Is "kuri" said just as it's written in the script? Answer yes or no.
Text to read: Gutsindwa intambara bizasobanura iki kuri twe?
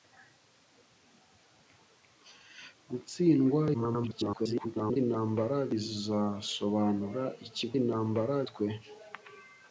no